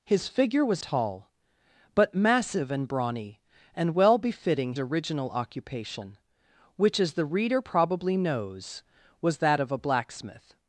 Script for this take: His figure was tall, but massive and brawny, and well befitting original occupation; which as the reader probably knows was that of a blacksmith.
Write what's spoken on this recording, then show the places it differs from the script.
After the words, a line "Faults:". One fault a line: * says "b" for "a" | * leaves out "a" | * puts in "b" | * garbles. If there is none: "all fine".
His figure was tall, but massive and brawny, and well befitting original occupation; which as the reader probably knows was that of a blacksmith.
Faults:
all fine